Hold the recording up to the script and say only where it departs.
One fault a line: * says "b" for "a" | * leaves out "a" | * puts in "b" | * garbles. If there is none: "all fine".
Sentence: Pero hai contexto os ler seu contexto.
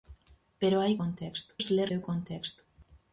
all fine